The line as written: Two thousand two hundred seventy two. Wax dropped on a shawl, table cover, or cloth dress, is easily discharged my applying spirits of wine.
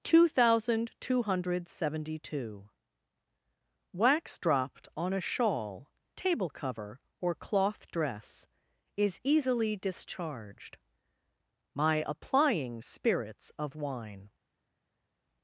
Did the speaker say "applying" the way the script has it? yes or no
yes